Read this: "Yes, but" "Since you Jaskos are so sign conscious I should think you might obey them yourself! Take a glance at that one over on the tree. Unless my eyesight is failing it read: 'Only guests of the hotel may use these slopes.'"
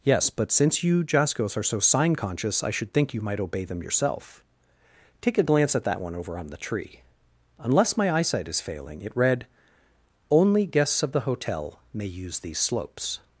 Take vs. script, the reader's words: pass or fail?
pass